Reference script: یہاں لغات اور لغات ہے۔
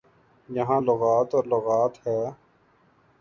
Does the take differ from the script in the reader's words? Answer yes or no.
no